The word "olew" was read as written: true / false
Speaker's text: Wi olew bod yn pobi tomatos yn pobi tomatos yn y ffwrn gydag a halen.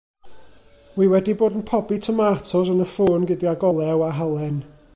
false